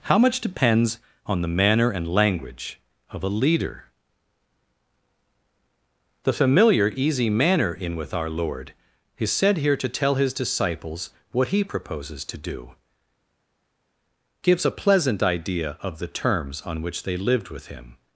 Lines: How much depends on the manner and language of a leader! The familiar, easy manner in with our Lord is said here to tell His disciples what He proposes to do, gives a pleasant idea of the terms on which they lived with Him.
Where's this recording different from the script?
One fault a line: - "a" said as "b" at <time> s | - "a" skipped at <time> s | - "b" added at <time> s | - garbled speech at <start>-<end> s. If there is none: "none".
none